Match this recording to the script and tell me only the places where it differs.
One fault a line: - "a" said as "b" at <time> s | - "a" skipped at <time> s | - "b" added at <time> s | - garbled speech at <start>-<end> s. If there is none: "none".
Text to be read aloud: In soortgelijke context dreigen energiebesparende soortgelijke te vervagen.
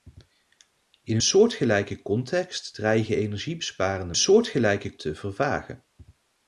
none